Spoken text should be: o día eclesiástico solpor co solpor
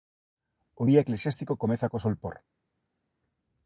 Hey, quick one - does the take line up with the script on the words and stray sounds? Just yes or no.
no